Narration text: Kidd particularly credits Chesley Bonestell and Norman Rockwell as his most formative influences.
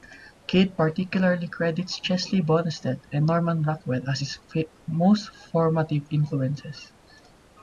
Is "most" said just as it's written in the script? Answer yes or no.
yes